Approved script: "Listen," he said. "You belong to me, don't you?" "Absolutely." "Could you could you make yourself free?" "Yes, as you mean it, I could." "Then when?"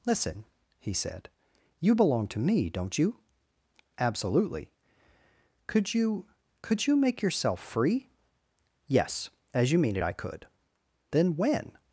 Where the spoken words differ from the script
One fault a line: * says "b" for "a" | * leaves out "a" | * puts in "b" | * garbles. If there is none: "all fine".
all fine